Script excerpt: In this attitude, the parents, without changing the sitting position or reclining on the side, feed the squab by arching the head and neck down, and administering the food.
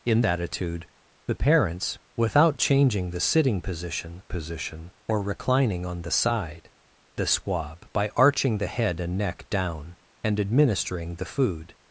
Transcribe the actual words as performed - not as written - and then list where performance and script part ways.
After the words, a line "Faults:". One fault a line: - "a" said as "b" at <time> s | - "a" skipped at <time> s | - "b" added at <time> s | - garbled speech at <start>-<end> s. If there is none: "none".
In attitude, the parents, without changing the sitting position position or reclining on the side, the squab by arching the head and neck down, and administering the food.
Faults:
- "this" skipped at 0.2 s
- "position" added at 4.3 s
- "feed" skipped at 6.7 s